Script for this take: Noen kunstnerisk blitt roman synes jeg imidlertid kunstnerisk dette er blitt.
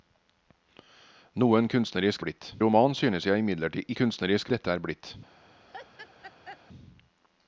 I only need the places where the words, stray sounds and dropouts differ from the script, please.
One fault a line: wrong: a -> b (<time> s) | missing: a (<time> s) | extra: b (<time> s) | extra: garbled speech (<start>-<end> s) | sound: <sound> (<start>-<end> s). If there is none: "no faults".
sound: laugh (5.7-6.6 s)